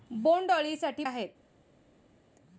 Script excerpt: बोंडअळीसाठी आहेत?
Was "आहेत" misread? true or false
false